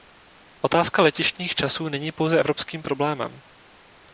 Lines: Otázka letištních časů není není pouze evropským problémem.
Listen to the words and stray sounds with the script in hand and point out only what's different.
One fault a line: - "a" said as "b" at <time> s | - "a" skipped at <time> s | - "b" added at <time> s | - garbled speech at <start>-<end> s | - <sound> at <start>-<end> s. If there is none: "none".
- "není" skipped at 2.1 s